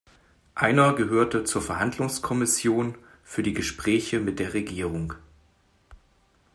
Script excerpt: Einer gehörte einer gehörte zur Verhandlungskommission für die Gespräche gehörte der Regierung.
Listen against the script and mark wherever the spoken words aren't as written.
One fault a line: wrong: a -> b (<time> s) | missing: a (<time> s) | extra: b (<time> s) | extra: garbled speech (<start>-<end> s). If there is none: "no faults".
missing: einer gehörte (1.4 s)
wrong: gehörte -> mit (4.2 s)